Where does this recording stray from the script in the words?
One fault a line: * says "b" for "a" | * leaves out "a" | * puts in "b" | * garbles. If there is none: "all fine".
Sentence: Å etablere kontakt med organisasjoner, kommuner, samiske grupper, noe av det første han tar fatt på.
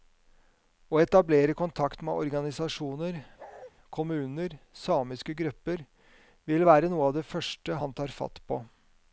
* puts in "vil være"